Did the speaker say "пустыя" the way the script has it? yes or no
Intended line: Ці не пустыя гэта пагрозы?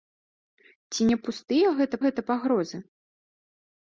yes